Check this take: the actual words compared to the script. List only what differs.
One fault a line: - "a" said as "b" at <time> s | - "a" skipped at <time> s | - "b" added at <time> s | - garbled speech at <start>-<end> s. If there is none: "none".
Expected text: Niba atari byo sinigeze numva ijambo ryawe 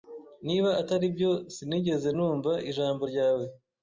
none